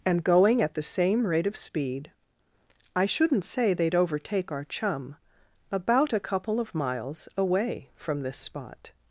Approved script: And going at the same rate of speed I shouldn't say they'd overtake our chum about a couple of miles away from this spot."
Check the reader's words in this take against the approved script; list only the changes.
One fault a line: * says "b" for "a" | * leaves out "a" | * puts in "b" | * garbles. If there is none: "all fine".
all fine